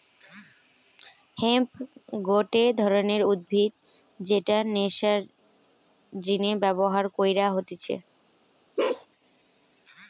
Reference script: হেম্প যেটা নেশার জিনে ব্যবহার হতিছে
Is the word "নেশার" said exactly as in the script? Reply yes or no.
yes